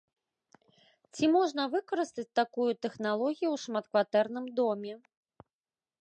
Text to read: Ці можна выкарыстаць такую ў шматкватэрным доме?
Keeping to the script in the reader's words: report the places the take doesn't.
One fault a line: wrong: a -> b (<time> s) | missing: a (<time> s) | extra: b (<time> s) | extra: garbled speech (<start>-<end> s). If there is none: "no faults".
extra: тэхналогію (2.9 s)